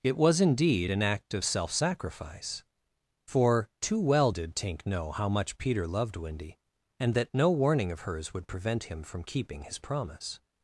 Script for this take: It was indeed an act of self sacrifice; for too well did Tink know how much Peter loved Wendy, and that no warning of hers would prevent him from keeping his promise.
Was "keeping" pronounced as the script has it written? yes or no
yes